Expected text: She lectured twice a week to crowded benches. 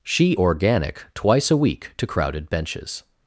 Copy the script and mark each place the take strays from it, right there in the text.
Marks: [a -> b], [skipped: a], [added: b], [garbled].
She [lectured -> organic] twice a week to crowded benches.